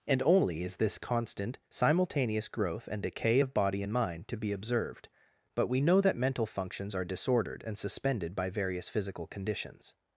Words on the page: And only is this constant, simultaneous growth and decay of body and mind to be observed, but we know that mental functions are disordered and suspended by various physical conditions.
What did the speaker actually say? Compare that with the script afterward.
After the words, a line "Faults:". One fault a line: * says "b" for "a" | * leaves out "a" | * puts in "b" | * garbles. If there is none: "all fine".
And only is this constant, simultaneous growth and decay of body and mind to be observed, but we know that mental functions are disordered and suspended by various physical conditions.
Faults:
all fine